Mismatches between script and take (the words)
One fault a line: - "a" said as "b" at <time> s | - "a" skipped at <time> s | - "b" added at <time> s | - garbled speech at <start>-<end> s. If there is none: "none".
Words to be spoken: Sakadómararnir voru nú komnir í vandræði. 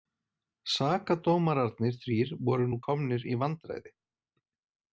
- "þrír" added at 2.0 s